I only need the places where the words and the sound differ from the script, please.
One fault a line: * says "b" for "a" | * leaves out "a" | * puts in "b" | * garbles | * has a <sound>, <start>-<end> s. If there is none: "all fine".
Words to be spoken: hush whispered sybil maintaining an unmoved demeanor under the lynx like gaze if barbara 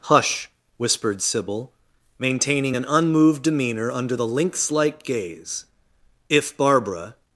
all fine